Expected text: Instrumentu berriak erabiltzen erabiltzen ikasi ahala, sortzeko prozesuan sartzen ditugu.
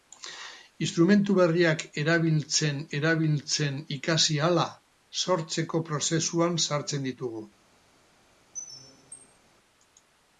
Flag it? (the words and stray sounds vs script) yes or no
yes